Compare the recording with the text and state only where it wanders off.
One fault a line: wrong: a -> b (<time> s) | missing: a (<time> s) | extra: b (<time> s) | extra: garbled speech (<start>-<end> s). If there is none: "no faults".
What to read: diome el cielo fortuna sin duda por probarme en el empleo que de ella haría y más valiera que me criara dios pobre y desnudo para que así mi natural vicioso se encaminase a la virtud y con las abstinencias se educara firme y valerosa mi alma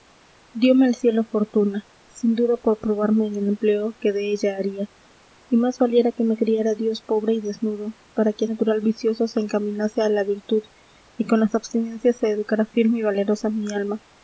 missing: así mi (8.4 s)